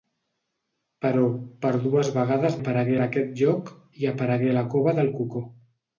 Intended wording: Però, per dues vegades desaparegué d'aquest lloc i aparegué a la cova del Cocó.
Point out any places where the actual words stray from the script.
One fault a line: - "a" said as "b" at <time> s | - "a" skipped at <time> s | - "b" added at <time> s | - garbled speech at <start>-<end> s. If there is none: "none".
- "desaparegué" said as "aparegué" at 2.6 s